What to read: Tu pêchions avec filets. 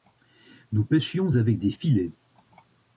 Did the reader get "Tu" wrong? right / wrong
wrong